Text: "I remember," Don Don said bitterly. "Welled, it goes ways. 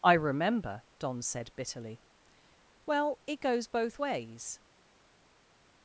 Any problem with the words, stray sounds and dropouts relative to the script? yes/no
yes